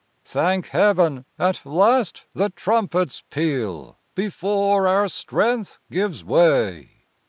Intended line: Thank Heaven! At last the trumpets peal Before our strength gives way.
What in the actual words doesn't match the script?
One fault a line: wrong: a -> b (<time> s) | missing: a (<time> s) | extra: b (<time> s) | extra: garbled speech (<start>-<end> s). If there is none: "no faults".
no faults